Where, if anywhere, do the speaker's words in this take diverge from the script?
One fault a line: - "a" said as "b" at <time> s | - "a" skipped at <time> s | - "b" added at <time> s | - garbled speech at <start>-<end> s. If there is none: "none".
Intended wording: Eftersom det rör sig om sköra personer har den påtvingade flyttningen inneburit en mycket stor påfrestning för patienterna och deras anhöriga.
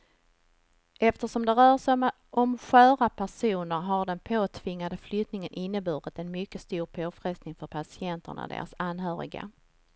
none